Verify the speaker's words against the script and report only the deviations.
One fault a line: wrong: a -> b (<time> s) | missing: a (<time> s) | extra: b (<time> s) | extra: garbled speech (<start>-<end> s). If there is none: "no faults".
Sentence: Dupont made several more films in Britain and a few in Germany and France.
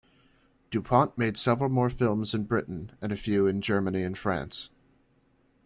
no faults